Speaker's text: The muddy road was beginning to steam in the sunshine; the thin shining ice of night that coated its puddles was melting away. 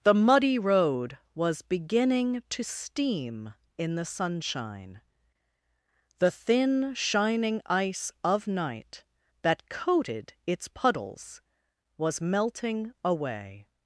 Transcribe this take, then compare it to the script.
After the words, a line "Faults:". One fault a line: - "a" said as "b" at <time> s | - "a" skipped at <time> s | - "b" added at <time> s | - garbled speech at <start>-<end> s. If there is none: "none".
The muddy road was beginning to steam in the sunshine; the thin shining ice of night that coated its puddles was melting away.
Faults:
none